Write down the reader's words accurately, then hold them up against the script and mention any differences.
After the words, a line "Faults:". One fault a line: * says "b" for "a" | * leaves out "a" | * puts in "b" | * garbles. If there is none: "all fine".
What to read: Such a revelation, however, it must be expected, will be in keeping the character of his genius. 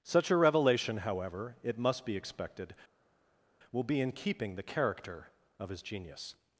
Such a revelation, however, it must be expected, will be in keeping the character of his genius.
Faults:
all fine